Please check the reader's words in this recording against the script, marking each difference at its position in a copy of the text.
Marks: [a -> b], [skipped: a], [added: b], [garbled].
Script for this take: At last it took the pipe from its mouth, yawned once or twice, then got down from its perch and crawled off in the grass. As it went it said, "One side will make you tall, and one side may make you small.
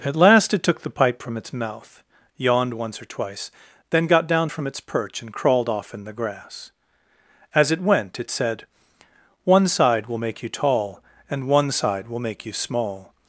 At last it took the pipe from its mouth, yawned once or twice, then got down from its perch and crawled off in the grass. As it went it said, "One side will make you tall, and one side [may -> will] make you small.